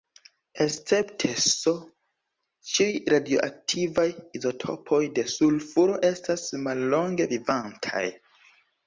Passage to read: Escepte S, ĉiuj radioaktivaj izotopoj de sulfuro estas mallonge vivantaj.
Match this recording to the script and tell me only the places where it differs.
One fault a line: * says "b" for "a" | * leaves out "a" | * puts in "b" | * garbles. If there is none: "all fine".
all fine